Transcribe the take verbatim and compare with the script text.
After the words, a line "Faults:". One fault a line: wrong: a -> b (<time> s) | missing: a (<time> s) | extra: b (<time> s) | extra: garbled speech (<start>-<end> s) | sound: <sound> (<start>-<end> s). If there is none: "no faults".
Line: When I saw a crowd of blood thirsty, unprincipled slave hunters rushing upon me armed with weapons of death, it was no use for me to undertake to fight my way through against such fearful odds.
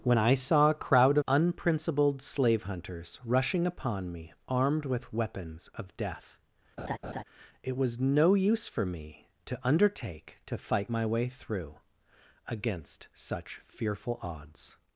When I saw a crowd unprincipled slave hunters rushing upon me armed with weapons of death, it was no use for me to undertake to fight my way through against such fearful odds.
Faults:
missing: of blood thirsty (1.2 s)
sound: laugh (6.8-7.2 s)